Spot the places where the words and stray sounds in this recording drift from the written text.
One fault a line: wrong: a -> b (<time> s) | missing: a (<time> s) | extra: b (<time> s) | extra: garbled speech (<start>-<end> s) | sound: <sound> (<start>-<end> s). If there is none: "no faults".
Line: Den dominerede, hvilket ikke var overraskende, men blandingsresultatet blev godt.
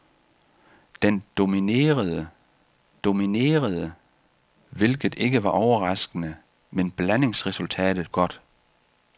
extra: dominerede (3.0 s)
missing: blev (8.1 s)